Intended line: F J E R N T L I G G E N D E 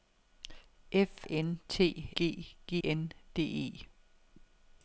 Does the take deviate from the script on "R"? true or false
true